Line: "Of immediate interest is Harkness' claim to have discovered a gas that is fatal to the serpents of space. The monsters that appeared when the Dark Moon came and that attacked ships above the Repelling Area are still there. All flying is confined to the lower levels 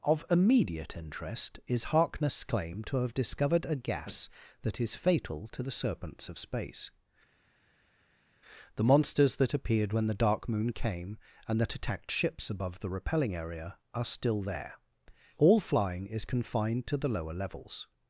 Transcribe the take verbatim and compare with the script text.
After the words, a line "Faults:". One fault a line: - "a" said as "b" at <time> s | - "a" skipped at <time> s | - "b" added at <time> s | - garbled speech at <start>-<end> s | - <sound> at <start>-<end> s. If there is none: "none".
"Of immediate interest is Harkness' claim to have discovered a gas that is fatal to the serpents of space. The monsters that appeared when the Dark Moon came and that attacked ships above the Repelling Area are still there. All flying is confined to the lower levels
Faults:
none